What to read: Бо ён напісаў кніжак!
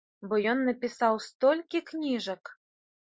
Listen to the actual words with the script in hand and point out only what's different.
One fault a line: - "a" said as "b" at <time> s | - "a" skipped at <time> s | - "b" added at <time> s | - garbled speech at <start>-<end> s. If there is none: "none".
- "столькі" added at 1.3 s